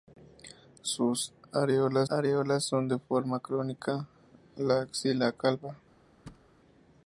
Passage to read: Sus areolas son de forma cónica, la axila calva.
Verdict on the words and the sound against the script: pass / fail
fail